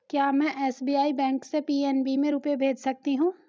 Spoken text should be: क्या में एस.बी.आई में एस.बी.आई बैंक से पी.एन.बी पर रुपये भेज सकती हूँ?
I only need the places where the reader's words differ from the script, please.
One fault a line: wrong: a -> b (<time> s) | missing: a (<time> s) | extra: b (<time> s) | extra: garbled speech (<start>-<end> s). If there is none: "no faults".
missing: में एस.बी.आई (1.1 s)
wrong: पर -> में (2.2 s)